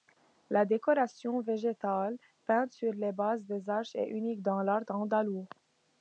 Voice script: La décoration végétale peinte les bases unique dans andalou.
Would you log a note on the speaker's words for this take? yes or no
yes